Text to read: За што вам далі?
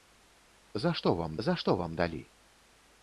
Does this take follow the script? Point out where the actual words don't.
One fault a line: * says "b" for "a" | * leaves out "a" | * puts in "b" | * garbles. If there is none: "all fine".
* puts in "за што вам"